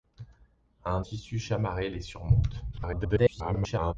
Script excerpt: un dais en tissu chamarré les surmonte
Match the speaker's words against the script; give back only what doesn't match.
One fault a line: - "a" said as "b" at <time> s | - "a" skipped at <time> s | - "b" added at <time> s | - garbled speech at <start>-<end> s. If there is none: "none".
- "dais en" skipped at 1.0 s
- garbled speech at 2.7-3.9 s